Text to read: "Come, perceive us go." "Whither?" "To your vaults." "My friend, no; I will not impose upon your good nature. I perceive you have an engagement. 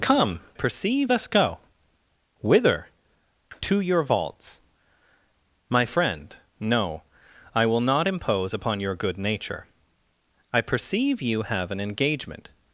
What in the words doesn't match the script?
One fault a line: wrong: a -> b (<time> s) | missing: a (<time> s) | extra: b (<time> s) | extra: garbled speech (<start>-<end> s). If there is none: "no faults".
no faults